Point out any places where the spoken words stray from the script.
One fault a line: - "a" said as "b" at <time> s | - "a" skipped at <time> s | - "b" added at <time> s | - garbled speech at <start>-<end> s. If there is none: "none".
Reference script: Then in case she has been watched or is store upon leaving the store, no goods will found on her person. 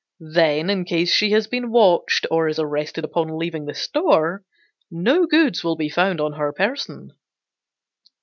- "store" said as "arrested" at 2.6 s
- "be" added at 5.8 s